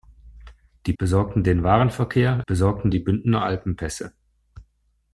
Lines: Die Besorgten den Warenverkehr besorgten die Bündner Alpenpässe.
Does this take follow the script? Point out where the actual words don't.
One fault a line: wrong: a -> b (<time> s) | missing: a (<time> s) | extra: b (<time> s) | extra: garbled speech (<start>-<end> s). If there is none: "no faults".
no faults